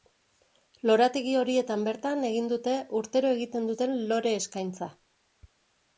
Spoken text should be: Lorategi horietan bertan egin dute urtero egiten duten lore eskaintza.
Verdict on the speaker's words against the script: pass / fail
pass